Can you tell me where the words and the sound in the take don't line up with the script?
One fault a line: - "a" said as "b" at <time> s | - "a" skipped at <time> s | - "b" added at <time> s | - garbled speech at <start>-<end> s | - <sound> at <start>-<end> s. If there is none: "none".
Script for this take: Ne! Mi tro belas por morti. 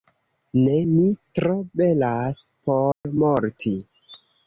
- dropout at 2.9-3.0 s